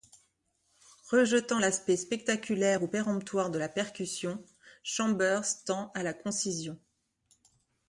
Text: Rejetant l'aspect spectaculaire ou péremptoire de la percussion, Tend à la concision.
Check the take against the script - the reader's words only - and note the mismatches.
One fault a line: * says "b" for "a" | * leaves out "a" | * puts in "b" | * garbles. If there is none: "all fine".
* puts in "Chambers"